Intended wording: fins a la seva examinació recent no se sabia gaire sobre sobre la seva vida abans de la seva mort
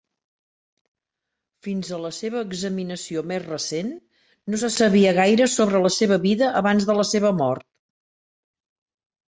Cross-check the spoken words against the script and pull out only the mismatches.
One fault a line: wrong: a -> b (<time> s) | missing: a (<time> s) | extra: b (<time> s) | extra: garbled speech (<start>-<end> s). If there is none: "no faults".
extra: més (3.3 s)
missing: sobre (5.9 s)